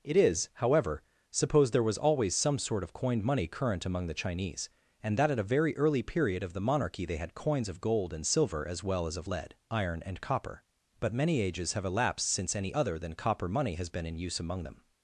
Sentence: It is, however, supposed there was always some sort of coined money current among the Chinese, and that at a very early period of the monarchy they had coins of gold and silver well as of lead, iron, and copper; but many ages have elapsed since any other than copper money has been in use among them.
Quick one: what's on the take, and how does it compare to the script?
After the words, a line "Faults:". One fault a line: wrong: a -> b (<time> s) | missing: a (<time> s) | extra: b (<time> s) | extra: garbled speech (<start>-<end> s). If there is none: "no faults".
It is, however, supposed there was always some sort of coined money current among the Chinese, and that at a very early period of the monarchy they had coins of gold and silver as well as of lead, iron, and copper; but many ages have elapsed since any other than copper money has been in use among them.
Faults:
extra: as (8.7 s)